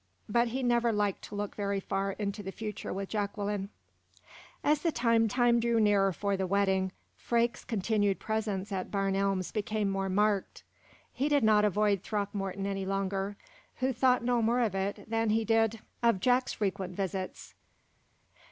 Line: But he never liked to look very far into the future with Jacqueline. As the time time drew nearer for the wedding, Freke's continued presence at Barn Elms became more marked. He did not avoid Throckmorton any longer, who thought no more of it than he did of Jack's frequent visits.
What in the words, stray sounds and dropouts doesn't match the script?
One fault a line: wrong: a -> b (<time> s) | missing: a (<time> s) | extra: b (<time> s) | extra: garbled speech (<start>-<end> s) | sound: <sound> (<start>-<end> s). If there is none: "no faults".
no faults